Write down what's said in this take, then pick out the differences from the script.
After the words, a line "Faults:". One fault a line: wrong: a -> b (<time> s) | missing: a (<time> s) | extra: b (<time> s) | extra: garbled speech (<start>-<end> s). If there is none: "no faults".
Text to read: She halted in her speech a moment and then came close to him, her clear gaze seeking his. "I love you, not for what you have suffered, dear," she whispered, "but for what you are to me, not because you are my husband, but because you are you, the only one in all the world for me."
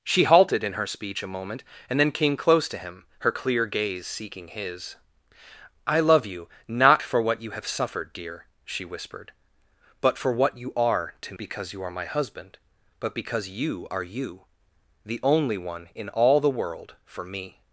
She halted in her speech a moment and then came close to him, her clear gaze seeking his. "I love you, not for what you have suffered, dear," she whispered, "but for what you are to because you are my husband, but because you are you, the only one in all the world for me."
Faults:
missing: me not (11.3 s)